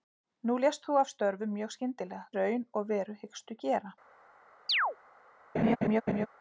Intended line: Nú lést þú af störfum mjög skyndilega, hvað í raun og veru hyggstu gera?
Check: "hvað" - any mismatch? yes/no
yes